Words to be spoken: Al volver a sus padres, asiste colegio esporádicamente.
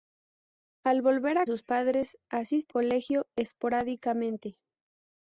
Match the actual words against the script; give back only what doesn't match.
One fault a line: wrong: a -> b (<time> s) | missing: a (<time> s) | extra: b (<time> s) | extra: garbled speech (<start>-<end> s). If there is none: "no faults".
no faults